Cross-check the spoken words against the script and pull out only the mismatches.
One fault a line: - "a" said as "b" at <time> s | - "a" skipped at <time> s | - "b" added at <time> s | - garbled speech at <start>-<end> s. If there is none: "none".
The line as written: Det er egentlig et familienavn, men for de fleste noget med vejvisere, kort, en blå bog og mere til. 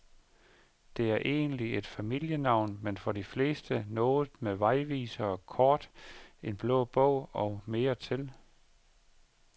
none